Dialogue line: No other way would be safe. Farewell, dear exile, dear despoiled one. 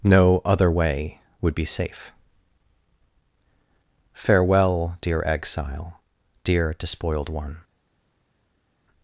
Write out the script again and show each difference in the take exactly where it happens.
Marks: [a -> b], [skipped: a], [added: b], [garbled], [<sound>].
No other way would be safe. Farewell, dear exile, dear despoiled one.